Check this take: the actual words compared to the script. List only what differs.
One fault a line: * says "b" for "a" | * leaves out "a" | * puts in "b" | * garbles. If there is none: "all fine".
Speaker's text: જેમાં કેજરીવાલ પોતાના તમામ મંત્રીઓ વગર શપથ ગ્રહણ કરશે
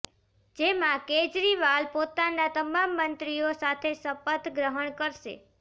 * says "સાથે" for "વગર"